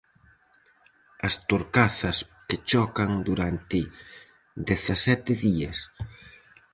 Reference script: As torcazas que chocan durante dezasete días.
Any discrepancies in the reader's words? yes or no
no